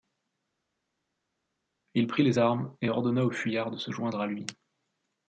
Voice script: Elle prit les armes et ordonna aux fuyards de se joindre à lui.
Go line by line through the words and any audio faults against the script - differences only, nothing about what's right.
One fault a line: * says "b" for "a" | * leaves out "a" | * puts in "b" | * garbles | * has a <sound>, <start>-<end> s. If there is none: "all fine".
* says "Il" for "Elle"